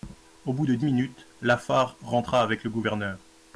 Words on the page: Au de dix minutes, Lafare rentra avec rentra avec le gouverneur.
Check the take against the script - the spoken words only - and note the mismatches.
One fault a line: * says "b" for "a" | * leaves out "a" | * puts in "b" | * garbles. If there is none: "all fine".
* puts in "bout"
* leaves out "rentra avec"